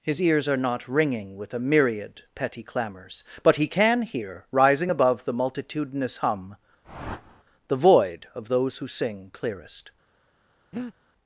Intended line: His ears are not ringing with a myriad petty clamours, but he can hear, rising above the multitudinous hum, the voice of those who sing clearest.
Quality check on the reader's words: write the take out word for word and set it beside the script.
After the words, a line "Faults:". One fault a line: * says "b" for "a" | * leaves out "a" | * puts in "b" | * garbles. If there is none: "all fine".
His ears are not ringing with a myriad petty clamours, but he can hear, rising above the multitudinous hum, the void of those who sing clearest.
Faults:
* says "void" for "voice"